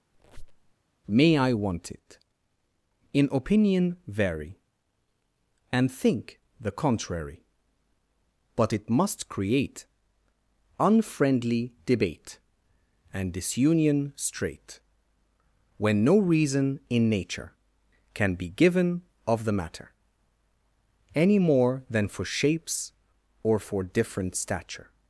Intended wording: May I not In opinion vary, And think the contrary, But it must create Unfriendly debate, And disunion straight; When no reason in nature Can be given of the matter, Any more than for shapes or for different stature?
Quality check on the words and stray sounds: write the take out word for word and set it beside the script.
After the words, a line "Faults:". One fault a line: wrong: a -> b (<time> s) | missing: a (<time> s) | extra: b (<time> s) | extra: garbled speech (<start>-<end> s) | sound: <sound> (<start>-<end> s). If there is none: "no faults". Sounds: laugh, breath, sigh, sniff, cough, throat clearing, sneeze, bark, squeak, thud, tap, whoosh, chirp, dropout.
May I want it In opinion vary, And think the contrary, But it must create Unfriendly debate, And disunion straight; When no reason in nature Can be given of the matter, Any more than for shapes or for different stature?
Faults:
sound: squeak (0.1-0.7 s)
wrong: not -> want it (1.5 s)